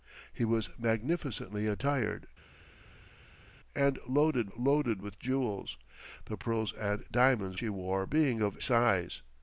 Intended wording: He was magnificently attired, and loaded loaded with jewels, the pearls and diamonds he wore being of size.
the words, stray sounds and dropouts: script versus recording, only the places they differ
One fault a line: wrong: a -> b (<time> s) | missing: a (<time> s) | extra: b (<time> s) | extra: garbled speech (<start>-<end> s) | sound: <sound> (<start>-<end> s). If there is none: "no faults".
no faults